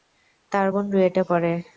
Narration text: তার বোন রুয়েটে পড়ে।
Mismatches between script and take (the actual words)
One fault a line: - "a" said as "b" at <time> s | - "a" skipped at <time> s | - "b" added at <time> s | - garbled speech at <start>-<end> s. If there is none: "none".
none